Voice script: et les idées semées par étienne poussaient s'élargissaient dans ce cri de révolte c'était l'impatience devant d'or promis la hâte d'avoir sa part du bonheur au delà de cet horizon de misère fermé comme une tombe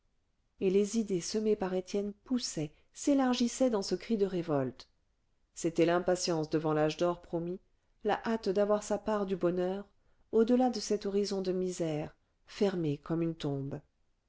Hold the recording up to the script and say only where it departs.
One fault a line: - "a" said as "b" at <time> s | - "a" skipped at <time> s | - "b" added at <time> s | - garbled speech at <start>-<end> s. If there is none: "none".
- "l'âge" added at 6.7 s